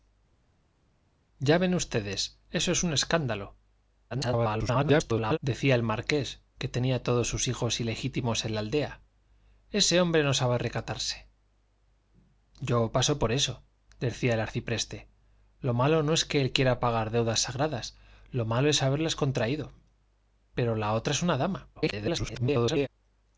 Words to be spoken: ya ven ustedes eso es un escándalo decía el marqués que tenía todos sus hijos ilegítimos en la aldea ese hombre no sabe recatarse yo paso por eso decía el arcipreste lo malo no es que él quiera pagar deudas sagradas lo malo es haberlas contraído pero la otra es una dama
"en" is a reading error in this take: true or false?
false